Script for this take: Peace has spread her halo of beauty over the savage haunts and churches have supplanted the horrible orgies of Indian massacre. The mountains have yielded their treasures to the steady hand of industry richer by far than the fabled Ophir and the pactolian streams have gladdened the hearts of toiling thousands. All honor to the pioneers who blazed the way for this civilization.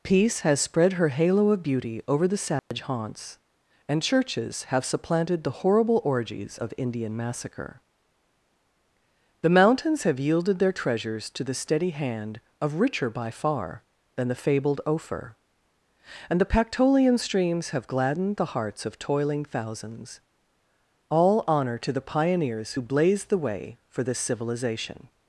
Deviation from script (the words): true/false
true